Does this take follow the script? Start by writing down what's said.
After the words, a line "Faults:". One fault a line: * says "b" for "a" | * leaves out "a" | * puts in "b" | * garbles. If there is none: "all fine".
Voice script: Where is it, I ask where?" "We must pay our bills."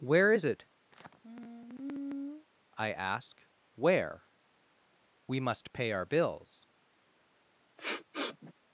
Where is it, I ask where?" "We must pay our bills."
Faults:
all fine